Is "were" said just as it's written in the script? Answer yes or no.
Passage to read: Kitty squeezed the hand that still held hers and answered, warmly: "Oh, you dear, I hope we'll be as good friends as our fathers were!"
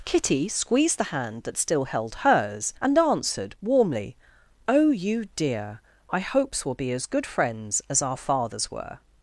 yes